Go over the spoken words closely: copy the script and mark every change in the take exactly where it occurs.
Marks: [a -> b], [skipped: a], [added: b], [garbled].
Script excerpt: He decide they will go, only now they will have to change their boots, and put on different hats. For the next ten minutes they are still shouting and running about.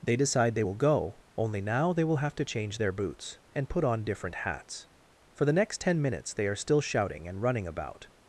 [He -> They] decide they will go, only now they will have to change their boots, and put on different hats. For the next ten minutes they are still shouting and running about.